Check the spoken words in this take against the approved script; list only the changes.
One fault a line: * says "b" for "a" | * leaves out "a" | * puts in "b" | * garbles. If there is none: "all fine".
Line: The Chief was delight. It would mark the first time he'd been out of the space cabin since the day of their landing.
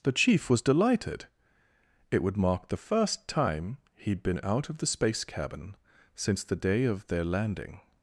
* says "delighted" for "delight"